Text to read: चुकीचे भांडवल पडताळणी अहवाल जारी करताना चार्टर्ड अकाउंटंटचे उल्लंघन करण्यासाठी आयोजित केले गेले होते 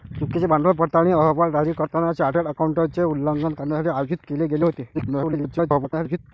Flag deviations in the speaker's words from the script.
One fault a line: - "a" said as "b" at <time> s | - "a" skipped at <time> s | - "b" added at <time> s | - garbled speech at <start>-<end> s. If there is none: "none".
- garbled speech at 4.9-6.2 s